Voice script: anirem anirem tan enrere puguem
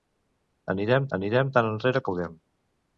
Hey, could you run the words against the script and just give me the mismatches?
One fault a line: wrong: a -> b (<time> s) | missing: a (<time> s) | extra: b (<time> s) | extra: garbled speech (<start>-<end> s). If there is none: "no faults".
no faults